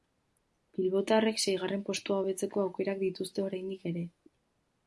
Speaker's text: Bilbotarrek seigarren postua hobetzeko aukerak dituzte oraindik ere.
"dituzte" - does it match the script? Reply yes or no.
yes